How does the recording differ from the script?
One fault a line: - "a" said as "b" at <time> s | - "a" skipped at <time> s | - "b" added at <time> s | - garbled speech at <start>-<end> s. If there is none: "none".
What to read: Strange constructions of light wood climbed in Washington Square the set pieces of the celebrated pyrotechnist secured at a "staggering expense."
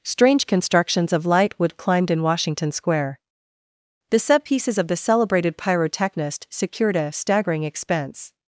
- "at" skipped at 7.0 s